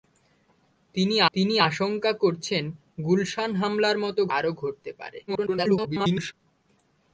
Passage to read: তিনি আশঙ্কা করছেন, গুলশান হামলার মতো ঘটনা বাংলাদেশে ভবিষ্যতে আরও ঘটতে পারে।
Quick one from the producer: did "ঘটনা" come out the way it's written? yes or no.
no